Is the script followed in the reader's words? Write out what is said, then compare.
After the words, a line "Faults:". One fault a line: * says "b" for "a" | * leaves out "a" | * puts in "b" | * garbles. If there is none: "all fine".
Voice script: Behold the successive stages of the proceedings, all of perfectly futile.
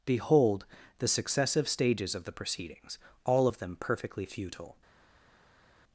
Behold the successive stages of the proceedings, all of them perfectly futile.
Faults:
* puts in "them"